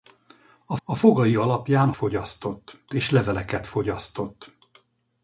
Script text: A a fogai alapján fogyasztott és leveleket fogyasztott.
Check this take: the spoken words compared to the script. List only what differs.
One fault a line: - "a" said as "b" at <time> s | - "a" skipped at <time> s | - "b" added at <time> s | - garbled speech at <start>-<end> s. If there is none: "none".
none